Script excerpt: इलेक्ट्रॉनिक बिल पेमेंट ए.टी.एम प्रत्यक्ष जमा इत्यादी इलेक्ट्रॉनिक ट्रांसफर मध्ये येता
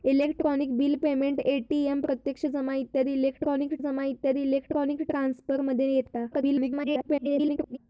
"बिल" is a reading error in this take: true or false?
false